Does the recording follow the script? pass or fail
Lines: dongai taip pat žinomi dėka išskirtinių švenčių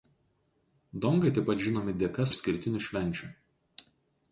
pass